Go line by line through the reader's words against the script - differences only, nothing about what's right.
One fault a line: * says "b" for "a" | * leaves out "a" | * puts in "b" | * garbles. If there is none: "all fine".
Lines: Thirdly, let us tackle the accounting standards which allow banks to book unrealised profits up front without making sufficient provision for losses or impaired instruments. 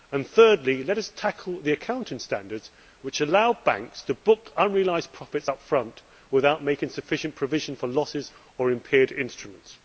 all fine